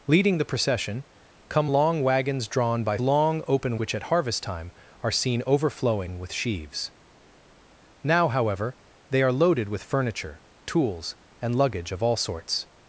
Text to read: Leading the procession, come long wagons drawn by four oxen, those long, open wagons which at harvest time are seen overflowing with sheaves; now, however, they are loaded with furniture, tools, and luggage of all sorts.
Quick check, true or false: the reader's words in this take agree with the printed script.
false